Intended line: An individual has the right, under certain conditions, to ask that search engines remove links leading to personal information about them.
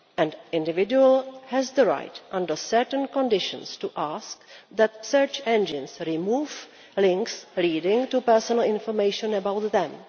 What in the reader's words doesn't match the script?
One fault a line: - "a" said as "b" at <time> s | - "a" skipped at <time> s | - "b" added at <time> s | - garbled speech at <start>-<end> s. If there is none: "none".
none